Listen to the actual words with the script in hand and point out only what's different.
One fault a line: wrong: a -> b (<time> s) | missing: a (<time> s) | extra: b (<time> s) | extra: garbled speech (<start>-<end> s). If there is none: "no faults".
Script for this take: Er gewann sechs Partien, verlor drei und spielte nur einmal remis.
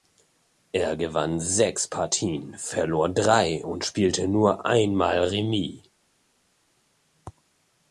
no faults